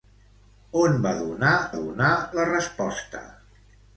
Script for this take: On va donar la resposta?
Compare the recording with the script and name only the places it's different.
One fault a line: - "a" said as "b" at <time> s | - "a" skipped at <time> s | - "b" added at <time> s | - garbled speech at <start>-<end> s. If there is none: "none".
- "donar" added at 1.8 s